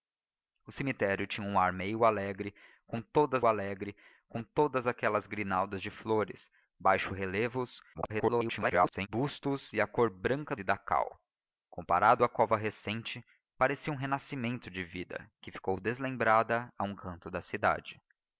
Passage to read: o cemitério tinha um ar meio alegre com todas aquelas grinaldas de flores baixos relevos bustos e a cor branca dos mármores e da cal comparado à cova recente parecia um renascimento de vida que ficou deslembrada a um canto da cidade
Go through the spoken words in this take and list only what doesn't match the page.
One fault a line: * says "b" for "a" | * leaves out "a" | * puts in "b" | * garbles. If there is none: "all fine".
* puts in "alegre com todas"
* garbles
* leaves out "dos mármores"